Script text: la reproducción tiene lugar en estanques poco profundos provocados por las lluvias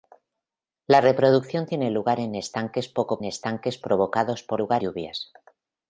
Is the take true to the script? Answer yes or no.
no